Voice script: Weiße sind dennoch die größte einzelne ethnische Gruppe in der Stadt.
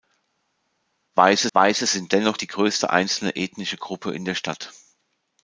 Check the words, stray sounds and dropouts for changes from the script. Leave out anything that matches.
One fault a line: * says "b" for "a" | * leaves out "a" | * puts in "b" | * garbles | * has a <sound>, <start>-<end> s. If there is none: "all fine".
* puts in "weiße"